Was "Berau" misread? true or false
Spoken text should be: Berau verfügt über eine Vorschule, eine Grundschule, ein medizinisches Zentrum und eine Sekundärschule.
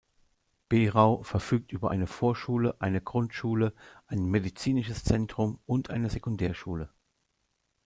false